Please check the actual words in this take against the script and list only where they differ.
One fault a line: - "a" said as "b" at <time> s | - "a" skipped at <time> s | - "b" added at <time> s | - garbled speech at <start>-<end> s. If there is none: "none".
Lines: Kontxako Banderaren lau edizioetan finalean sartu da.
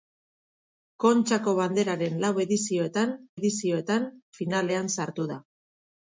- "edizioetan" added at 3.4 s